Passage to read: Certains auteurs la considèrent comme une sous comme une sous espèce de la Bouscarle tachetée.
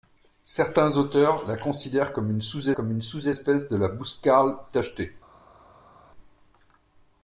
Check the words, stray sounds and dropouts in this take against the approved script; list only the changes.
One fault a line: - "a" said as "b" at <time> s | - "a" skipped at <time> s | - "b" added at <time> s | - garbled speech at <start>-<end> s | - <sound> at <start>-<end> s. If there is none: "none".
none